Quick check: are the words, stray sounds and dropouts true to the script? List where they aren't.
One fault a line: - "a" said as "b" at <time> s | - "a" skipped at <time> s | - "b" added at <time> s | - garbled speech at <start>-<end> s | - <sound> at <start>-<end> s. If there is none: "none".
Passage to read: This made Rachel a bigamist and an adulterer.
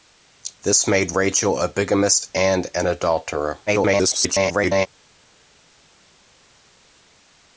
- garbled speech at 3.7-4.9 s